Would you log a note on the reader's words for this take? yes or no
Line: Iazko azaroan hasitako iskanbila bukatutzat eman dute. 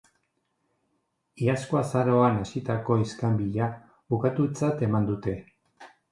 no